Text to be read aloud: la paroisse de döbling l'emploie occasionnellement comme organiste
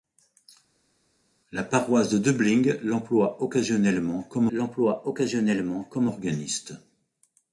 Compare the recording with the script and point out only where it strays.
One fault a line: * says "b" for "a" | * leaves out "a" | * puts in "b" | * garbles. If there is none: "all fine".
* puts in "l'emploie occasionnellement comme"